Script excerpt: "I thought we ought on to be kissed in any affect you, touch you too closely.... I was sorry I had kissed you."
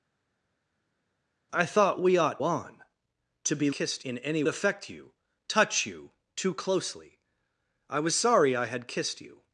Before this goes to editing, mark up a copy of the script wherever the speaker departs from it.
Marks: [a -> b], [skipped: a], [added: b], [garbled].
"I thought we ought on to be kissed in any affect you, touch you too closely.... I was sorry I had kissed you."